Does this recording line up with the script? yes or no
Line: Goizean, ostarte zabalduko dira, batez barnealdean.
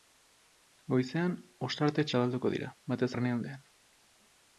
yes